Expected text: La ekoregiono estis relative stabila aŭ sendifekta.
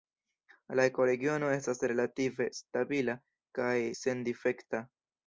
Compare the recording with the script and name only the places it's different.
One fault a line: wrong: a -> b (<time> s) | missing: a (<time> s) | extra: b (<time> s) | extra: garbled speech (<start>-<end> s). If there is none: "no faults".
wrong: estis -> estas (1.6 s)
wrong: aŭ -> kaj (3.6 s)